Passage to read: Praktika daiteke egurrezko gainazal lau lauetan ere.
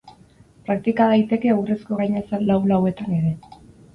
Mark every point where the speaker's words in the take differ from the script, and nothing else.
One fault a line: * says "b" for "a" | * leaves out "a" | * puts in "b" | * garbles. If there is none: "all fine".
all fine